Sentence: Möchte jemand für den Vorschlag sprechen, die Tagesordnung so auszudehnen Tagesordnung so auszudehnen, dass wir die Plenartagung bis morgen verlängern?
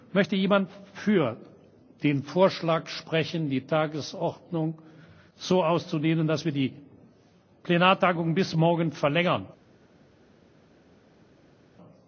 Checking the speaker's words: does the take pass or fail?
fail